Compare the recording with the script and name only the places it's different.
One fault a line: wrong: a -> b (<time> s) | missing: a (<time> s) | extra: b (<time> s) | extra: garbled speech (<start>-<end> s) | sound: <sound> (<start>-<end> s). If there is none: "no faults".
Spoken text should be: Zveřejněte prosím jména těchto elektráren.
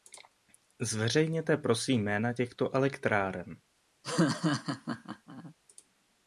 sound: laugh (4.0-5.5 s)